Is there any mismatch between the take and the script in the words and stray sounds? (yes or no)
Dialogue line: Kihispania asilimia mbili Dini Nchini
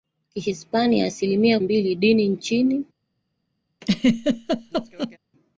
yes